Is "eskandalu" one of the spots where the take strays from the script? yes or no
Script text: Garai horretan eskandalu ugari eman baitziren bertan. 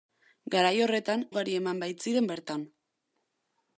yes